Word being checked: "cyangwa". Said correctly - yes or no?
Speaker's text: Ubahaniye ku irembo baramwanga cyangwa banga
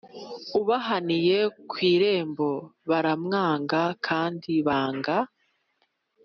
no